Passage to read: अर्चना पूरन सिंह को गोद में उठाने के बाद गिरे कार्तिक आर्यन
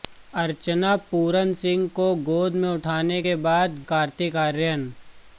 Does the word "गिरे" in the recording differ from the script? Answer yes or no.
yes